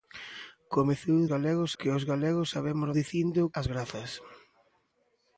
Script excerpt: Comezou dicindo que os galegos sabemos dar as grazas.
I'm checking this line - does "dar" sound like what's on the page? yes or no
no